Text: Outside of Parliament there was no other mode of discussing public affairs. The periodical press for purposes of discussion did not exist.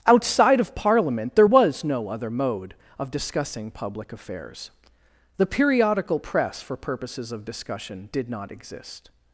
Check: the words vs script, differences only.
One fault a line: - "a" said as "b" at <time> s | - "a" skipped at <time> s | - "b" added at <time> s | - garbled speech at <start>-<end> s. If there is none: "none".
none